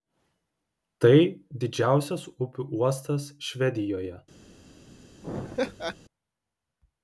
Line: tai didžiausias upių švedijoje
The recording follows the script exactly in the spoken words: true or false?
false